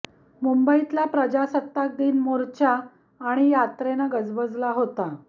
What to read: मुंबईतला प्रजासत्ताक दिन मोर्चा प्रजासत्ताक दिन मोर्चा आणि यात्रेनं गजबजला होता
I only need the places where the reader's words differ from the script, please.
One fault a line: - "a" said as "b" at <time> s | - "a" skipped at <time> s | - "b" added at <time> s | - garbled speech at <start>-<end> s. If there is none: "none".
- "प्रजासत्ताक दिन मोर्चा" skipped at 2.8 s